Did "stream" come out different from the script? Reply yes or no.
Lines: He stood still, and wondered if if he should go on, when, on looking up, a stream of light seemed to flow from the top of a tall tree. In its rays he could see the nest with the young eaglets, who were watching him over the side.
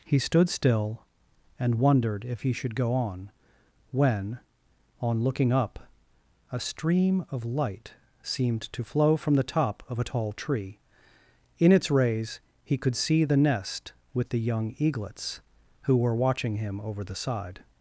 no